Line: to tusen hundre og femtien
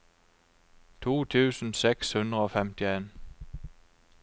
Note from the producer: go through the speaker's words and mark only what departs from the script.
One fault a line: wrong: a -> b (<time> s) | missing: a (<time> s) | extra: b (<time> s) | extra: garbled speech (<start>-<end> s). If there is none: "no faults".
extra: seks (1.8 s)